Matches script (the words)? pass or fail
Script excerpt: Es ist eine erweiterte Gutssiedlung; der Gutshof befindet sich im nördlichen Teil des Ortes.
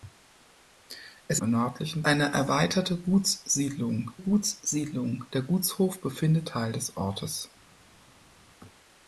fail